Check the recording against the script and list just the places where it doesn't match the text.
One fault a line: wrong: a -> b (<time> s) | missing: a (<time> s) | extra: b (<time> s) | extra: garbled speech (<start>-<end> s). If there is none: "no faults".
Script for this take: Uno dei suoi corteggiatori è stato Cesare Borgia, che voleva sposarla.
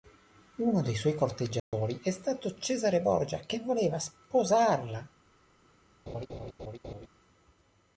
no faults